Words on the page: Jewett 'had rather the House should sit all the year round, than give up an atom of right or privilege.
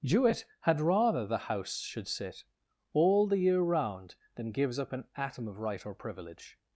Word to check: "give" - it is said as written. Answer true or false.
false